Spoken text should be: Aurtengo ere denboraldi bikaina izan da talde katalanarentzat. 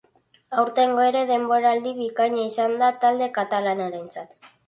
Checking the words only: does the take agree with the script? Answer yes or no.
yes